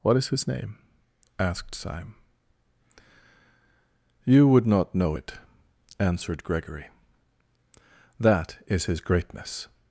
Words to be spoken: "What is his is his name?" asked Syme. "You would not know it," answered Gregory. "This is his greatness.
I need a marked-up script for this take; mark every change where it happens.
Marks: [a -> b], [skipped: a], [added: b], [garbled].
"What is his [skipped: is his] name?" asked Syme. "You would not know it," answered Gregory. ["This -> That] is his greatness.